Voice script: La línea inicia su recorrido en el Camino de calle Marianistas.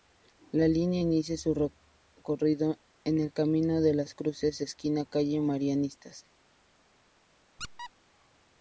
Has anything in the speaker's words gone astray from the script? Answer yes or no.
yes